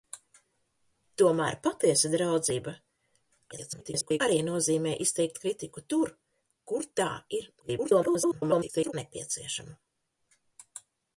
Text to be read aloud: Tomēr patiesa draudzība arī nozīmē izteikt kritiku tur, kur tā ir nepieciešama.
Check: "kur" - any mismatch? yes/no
no